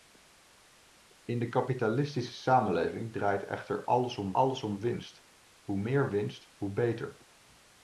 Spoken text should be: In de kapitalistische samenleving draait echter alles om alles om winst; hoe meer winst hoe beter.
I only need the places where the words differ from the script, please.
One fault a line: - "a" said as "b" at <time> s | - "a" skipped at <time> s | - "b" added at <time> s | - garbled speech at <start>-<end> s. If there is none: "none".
none